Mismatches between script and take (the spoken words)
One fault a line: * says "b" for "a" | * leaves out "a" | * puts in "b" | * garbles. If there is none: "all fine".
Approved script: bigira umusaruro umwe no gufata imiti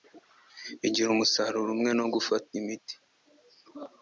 all fine